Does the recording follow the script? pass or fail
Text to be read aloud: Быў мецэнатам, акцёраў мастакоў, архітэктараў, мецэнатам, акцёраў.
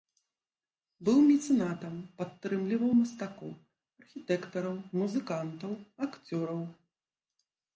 fail